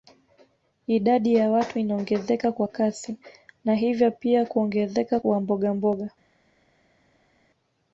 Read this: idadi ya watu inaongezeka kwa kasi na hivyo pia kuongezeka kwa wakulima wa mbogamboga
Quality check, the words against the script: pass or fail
fail